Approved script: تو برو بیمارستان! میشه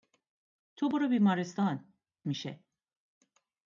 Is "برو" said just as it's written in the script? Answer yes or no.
yes